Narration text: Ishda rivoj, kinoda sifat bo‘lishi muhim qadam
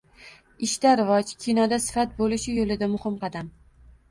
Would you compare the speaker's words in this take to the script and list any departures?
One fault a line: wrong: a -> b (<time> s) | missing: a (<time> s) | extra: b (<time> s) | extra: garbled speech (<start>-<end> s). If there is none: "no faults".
extra: yo‘lida (2.6 s)